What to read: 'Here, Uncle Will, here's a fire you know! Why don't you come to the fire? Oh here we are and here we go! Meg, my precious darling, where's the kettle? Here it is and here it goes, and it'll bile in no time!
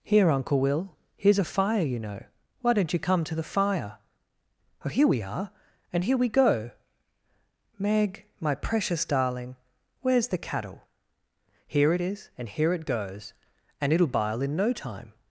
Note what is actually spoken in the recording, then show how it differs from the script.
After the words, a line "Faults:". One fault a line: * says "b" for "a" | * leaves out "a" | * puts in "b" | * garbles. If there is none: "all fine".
'Here, Uncle Will, here's a fire you know! Why don't you come to the fire? Oh here we are and here we go! Meg, my precious darling, where's the cattle? Here it is and here it goes, and it'll bile in no time!
Faults:
* says "cattle" for "kettle"